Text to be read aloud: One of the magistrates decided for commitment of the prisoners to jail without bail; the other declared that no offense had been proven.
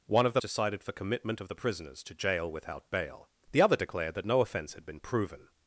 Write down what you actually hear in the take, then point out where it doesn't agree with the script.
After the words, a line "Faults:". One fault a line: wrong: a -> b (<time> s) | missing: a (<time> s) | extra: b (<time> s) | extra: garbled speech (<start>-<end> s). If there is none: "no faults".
One of the decided for commitment of the prisoners to jail without bail; the other declared that no offense had been proven.
Faults:
missing: magistrates (0.4 s)